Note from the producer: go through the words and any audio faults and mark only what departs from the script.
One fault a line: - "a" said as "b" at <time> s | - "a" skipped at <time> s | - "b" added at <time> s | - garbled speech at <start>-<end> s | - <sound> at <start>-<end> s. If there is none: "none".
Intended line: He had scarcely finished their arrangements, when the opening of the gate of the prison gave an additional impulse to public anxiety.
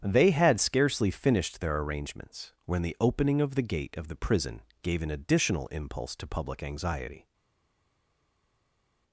- "He" said as "They" at 0.0 s